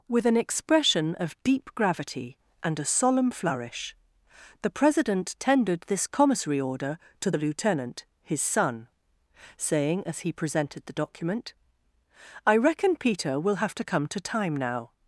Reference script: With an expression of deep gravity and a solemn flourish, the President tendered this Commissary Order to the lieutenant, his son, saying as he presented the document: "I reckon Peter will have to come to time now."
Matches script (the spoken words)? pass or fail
pass